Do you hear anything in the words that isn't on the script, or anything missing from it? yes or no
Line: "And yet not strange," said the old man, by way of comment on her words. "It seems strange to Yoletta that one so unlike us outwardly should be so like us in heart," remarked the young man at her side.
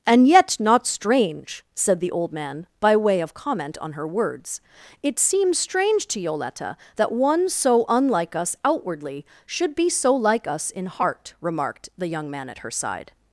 no